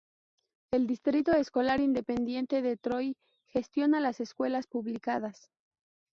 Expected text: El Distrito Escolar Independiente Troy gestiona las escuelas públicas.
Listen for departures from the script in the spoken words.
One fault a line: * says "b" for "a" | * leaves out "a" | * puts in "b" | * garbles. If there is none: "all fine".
* puts in "de"